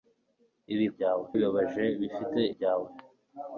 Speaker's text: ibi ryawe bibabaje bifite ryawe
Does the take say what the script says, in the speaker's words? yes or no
yes